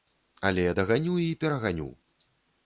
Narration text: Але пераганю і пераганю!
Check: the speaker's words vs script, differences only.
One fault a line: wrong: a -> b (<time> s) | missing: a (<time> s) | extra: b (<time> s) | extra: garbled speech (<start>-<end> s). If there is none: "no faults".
wrong: пераганю -> даганю (0.8 s)